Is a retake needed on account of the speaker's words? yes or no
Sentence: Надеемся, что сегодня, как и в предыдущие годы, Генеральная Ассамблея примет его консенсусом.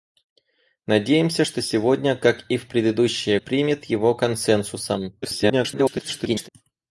yes